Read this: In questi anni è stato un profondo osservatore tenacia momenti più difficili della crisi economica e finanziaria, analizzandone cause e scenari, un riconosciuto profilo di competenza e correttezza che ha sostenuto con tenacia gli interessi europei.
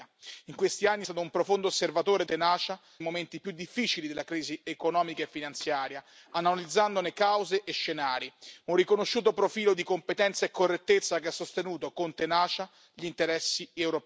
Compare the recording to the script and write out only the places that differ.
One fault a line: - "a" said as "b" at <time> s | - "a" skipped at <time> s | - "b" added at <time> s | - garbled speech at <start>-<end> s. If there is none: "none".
none